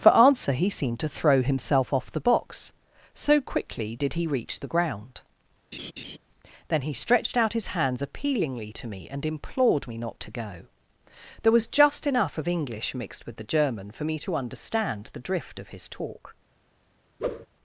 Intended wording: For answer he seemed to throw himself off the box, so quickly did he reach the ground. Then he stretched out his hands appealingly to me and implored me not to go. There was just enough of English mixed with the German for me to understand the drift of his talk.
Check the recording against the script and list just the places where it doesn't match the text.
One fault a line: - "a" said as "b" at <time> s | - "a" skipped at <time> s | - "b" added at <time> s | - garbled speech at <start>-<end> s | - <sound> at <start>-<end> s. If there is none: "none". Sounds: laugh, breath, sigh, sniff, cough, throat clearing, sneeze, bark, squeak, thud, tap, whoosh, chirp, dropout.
- laugh at 5.7-6.2 s
- whoosh at 17.2-17.5 s